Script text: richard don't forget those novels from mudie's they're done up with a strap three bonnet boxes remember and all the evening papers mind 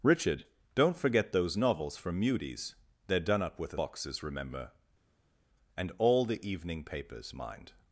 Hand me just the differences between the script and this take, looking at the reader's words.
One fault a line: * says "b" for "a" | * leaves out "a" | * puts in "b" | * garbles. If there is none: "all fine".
* leaves out "strap three bonnet"